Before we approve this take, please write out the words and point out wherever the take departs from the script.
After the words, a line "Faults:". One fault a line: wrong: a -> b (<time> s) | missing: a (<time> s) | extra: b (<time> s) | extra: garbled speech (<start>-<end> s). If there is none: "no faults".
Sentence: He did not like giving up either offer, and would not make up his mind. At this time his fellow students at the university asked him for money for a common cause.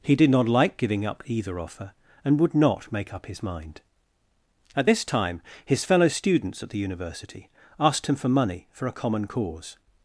He did not like giving up either offer, and would not make up his mind. At this time his fellow students at the university asked him for money for a common cause.
Faults:
no faults